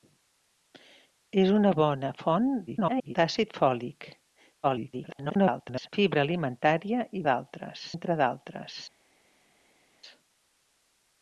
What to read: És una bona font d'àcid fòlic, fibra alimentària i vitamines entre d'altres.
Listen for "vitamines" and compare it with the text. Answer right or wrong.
wrong